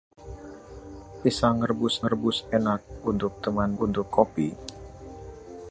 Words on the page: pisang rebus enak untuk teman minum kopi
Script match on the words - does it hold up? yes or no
no